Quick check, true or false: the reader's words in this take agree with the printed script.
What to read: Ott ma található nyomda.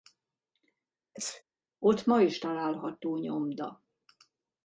false